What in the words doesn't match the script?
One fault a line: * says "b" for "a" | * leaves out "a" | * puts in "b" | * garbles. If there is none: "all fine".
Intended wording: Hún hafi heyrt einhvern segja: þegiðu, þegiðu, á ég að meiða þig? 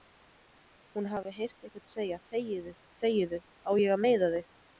all fine